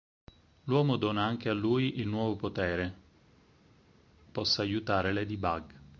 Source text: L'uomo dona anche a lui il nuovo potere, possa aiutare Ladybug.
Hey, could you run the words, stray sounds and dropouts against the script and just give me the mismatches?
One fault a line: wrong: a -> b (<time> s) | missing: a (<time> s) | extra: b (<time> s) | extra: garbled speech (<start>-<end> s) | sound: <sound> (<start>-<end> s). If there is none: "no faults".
no faults